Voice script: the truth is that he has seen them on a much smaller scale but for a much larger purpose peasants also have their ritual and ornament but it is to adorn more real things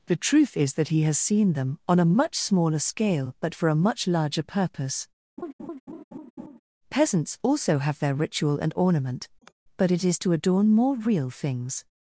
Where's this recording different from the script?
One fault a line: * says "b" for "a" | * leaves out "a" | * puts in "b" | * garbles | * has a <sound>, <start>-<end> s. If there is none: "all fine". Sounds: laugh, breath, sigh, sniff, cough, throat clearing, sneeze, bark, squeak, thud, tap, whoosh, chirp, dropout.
* has a laugh, 5.4-6.6 s
* has a sigh, 9.4-9.5 s